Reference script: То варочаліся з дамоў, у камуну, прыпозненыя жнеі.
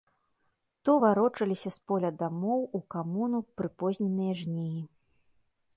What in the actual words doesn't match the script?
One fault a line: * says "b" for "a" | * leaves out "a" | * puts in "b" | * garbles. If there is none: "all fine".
* puts in "поля"